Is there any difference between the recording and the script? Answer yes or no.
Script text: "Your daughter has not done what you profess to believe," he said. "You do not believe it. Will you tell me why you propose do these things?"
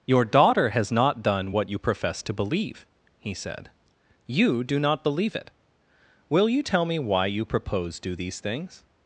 no